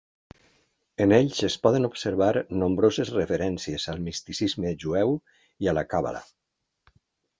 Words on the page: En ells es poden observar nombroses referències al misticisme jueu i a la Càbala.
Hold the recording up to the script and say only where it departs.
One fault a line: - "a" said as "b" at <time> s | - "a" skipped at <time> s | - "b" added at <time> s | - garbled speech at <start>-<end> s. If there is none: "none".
none